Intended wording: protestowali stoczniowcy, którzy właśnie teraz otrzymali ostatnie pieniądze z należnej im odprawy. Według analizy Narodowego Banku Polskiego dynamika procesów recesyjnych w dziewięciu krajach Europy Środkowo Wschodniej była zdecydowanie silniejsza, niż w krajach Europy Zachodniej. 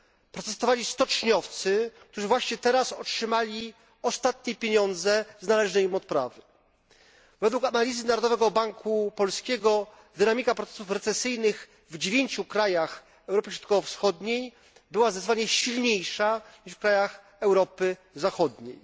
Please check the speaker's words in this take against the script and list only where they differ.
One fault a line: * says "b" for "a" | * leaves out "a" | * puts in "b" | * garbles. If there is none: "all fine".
all fine